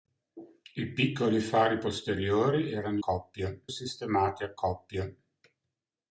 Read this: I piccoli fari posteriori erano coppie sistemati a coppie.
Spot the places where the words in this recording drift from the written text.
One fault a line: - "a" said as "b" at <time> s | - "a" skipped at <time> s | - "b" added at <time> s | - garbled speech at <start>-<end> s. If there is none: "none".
none